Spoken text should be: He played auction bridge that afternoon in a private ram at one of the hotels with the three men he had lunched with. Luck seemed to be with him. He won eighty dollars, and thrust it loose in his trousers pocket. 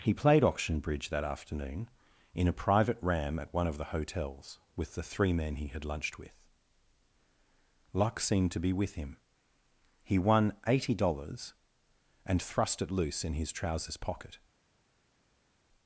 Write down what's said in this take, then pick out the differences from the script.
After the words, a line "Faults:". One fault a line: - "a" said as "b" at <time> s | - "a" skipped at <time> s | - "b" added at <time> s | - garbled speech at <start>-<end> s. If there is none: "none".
He played auction bridge that afternoon in a private ram at one of the hotels with the three men he had lunched with. Luck seemed to be with him. He won eighty dollars, and thrust it loose in his trousers pocket.
Faults:
none